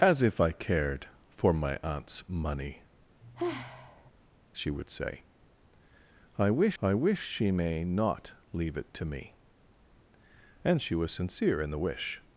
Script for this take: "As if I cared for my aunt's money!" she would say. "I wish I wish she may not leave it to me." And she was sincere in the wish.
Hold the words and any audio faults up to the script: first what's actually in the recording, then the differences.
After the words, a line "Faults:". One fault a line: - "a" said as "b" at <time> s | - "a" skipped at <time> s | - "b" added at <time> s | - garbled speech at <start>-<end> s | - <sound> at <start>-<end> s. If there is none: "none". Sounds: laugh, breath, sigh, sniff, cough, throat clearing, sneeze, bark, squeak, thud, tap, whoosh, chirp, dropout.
"As if I cared for my aunt's money!" she would say. "I wish I wish she may not leave it to me." And she was sincere in the wish.
Faults:
- sigh at 3.2-4.1 s